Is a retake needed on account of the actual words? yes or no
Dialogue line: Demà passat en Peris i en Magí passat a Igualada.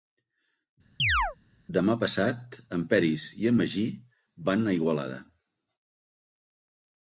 yes